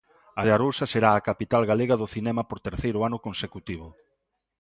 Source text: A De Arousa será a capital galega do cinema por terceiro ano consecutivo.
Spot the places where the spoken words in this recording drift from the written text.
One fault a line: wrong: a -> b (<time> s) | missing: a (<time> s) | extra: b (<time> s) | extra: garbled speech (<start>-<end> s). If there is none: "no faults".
no faults